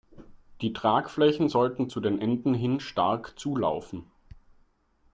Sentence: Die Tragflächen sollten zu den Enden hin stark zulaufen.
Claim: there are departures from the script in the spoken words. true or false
false